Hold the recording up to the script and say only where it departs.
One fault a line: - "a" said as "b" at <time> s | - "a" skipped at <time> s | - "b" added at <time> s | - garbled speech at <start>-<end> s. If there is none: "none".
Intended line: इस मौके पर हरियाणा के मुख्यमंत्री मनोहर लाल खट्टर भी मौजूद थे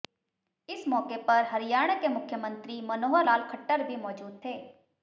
none